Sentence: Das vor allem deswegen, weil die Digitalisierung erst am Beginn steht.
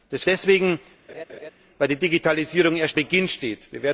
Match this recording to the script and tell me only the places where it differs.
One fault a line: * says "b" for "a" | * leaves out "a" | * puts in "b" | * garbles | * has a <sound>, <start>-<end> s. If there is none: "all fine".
* leaves out "vor allem"
* has a laugh, 1.1-1.5 s
* leaves out "am"